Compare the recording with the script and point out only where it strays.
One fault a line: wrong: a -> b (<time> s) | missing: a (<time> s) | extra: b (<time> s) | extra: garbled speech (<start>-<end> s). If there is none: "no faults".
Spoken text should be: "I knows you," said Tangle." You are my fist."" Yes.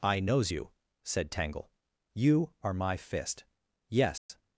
no faults